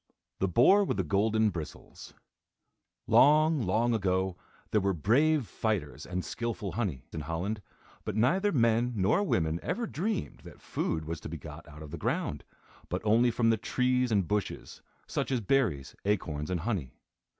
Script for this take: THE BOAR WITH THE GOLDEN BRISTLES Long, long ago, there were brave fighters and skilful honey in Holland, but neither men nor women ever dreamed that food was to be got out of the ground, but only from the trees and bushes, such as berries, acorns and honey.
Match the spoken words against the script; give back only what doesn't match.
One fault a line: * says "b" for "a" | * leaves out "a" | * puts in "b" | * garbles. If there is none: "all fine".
all fine